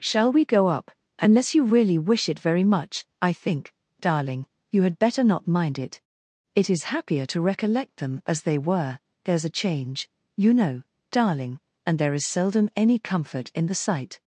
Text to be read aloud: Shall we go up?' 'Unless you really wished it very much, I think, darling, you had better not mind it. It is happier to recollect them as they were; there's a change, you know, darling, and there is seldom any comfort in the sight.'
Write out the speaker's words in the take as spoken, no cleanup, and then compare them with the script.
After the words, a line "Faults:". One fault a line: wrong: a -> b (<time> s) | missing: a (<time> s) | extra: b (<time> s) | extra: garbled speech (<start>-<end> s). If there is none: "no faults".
Shall we go up?' 'Unless you really wish it very much, I think, darling, you had better not mind it. It is happier to recollect them as they were; there's a change, you know, darling, and there is seldom any comfort in the sight.'
Faults:
wrong: wished -> wish (2.0 s)